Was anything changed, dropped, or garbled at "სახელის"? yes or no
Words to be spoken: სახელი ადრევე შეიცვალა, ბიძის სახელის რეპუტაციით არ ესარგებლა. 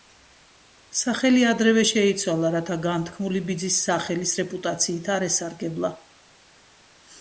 no